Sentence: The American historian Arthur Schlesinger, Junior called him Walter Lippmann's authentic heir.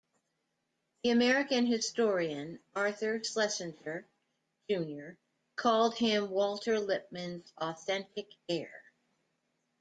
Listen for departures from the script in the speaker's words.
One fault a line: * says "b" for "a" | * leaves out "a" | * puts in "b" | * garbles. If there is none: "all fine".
all fine